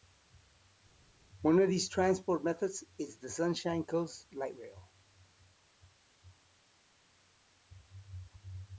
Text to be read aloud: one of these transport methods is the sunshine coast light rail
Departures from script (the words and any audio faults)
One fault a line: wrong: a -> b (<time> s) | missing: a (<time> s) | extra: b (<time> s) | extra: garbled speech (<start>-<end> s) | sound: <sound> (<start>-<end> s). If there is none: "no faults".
no faults